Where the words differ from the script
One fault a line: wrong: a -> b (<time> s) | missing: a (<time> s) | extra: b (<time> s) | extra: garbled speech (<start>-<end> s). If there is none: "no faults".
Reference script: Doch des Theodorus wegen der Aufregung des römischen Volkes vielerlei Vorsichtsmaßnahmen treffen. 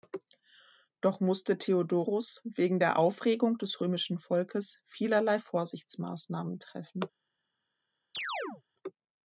wrong: des -> musste (1.2 s)